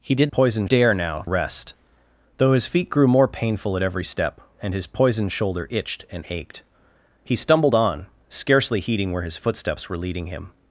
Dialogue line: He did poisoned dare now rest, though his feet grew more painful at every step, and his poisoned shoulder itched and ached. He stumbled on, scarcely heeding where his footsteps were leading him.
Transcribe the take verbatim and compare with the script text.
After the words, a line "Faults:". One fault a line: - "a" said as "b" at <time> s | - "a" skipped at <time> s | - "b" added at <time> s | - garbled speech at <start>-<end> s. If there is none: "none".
He did poisoned dare now rest, though his feet grew more painful at every step, and his poisoned shoulder itched and ached. He stumbled on, scarcely heeding where his footsteps were leading him.
Faults:
none